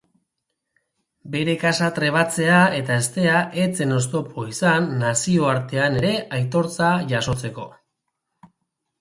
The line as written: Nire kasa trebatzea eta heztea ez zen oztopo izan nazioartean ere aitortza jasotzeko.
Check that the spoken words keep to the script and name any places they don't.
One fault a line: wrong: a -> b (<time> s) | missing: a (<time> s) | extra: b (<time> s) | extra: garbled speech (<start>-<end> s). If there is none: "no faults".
wrong: Nire -> Bere (1.3 s)